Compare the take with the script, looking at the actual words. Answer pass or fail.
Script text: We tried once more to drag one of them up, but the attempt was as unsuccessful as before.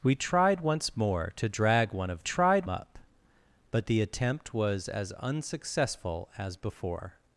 fail